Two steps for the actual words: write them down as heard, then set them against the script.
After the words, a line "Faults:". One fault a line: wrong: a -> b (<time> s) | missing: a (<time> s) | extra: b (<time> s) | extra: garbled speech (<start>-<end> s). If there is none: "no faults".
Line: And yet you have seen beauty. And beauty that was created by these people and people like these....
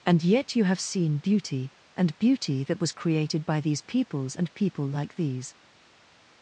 And yet you have seen beauty. And beauty that was created by these peoples and people like these....
Faults:
wrong: people -> peoples (3.8 s)